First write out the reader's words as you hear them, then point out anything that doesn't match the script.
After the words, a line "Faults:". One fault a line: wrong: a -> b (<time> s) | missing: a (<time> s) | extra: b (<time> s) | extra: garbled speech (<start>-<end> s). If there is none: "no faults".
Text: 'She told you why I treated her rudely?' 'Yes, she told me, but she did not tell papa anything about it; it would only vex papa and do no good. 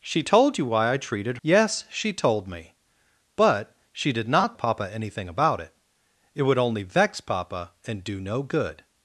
'She told you why I treated?' 'Yes, she told me, but she did not papa anything about it; it would only vex papa and do no good.
Faults:
missing: her rudely (1.4 s)
missing: tell (4.6 s)